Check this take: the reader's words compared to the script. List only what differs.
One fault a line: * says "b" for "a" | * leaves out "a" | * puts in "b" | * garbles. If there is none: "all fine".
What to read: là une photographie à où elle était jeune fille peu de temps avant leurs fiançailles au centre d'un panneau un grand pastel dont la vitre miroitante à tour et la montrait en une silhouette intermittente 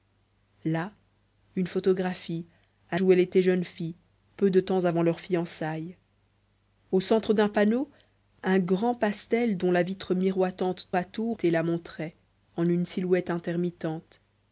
all fine